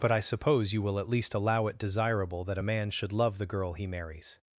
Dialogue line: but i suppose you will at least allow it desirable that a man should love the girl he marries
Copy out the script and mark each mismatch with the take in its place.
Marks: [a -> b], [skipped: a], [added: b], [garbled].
but i suppose you will at least allow it desirable that a man should love the girl he marries